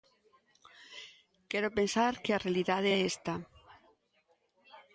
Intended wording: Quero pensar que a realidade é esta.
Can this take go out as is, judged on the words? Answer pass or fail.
pass